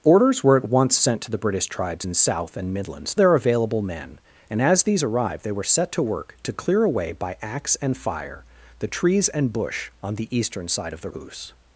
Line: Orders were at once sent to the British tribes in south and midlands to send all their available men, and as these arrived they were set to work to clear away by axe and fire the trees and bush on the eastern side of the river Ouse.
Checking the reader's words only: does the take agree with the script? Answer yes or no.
no